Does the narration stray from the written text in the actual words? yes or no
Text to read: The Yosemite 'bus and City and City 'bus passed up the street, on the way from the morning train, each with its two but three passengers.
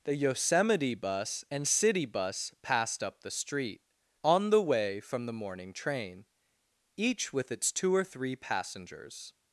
yes